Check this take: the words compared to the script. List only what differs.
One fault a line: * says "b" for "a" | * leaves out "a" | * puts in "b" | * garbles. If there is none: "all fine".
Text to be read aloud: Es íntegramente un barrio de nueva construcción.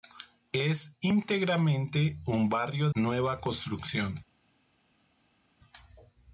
* leaves out "de"